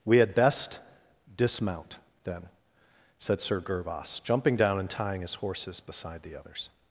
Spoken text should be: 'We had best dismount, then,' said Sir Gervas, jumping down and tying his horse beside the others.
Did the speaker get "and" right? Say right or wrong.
right